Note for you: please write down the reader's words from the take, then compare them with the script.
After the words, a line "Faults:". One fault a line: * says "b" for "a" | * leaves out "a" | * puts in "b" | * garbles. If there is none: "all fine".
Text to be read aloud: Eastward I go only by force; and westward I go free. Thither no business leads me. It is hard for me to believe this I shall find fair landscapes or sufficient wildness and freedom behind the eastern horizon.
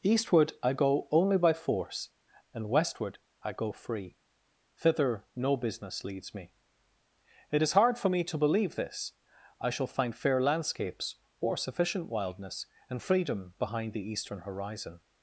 Eastward I go only by force; and westward I go free. Thither no business leads me. It is hard for me to believe this I shall find fair landscapes or sufficient wildness and freedom behind the eastern horizon.
Faults:
all fine